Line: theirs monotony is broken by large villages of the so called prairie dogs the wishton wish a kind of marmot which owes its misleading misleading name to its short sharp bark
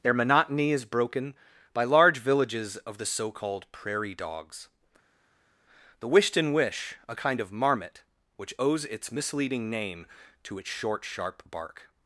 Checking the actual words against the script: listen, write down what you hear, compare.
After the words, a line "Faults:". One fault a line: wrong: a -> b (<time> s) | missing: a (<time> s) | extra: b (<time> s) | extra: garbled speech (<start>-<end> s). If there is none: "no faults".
their monotony is broken by large villages of the so called prairie dogs the wishton wish a kind of marmot which owes its misleading name to its short sharp bark
Faults:
wrong: theirs -> their (0.0 s)
missing: misleading (9.7 s)